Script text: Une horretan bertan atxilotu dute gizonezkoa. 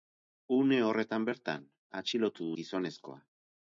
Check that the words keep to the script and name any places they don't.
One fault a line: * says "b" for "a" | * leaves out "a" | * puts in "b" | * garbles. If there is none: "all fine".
* leaves out "dute"